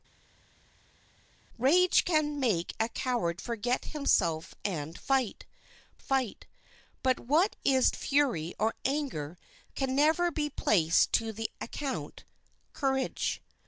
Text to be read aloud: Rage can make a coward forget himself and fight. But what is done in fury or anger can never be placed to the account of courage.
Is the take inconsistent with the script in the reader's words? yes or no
yes